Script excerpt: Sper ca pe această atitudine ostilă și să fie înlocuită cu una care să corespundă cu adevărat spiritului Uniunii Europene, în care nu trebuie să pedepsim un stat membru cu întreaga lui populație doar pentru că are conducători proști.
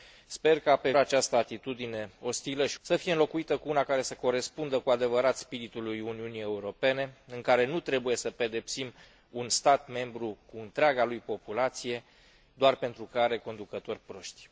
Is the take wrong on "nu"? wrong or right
right